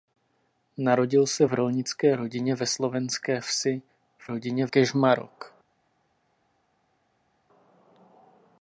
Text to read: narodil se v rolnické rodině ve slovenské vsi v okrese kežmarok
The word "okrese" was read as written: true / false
false